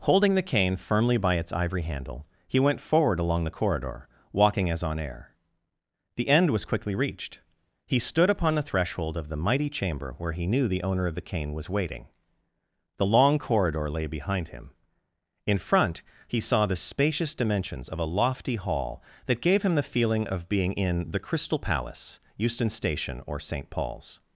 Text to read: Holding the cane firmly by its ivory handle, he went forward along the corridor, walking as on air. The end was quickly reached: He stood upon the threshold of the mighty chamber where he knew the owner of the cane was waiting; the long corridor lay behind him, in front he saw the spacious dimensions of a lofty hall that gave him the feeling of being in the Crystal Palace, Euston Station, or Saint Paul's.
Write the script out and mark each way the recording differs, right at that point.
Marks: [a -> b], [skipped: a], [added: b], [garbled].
Holding the cane firmly by its ivory handle, he went forward along the corridor, walking as on air. The end was quickly reached: He stood upon the threshold of the mighty chamber where he knew the owner of the cane was waiting; the long corridor lay behind him, in front he saw the spacious dimensions of a lofty hall that gave him the feeling of being in the Crystal Palace, Euston Station, or Saint Paul's.